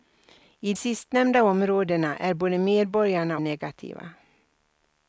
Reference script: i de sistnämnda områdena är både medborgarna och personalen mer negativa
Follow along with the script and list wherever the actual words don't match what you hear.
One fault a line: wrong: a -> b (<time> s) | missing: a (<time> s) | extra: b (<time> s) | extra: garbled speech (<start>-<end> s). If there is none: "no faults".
missing: de (0.7 s)
missing: och personalen mer (3.4 s)